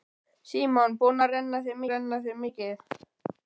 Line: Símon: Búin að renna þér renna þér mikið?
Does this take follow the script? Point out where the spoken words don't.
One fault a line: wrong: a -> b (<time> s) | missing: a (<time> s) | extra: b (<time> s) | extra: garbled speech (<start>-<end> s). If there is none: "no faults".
no faults